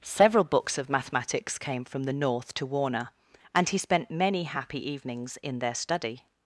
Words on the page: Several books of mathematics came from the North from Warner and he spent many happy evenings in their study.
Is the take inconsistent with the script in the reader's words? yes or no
yes